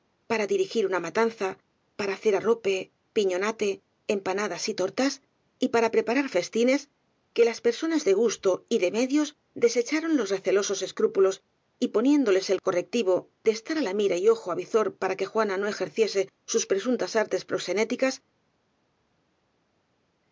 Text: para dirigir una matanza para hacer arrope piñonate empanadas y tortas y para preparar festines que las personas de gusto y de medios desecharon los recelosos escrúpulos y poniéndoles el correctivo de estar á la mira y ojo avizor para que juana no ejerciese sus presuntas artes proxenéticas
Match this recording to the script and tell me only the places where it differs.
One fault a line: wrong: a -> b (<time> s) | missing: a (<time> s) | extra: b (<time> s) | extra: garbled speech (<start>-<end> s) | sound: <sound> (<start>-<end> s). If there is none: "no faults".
no faults